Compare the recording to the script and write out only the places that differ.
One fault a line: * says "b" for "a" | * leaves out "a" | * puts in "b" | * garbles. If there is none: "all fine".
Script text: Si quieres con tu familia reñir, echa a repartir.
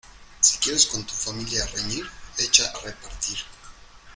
all fine